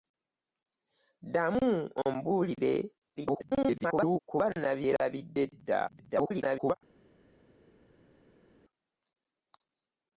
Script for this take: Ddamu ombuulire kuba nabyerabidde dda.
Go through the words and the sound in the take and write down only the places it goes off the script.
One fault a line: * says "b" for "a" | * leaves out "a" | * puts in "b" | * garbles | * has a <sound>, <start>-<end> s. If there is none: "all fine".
* garbles
* garbles